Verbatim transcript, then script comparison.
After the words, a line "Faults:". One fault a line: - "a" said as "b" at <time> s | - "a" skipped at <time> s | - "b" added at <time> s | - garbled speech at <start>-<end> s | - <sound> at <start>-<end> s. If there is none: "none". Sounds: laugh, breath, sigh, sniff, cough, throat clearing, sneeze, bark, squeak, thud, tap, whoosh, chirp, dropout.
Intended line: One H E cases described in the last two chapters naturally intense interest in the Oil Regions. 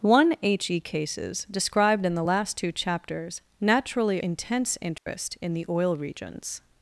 One H E cases described in the last two chapters naturally intense interest in the Oil Regions.
Faults:
- dropout at 5.0-5.1 s